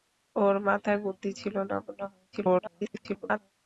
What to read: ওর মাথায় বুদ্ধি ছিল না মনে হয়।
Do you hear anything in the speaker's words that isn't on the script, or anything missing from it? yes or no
yes